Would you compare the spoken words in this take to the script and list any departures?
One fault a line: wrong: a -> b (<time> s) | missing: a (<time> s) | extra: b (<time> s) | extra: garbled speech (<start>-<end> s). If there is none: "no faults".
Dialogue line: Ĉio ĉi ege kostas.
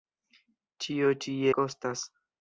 missing: ege (1.3 s)